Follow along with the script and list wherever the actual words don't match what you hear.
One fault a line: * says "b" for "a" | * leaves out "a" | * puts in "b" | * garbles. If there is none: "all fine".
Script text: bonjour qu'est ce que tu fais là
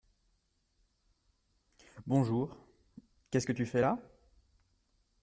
all fine